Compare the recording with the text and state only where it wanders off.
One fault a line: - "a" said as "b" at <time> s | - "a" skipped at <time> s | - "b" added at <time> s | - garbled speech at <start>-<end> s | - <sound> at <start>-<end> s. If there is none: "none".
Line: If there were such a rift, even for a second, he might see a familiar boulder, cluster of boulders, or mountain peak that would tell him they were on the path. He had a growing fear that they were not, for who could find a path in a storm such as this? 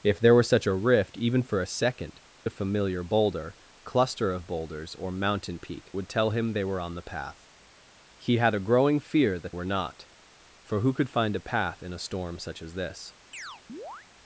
- "he might see" skipped at 2.2 s
- "that" skipped at 5.9 s
- "they" skipped at 9.5 s
- chirp at 13.3-14.1 s